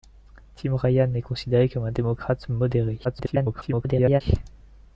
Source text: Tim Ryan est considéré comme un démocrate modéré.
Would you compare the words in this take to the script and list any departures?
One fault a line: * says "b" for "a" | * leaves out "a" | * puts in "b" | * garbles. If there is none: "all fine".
* garbles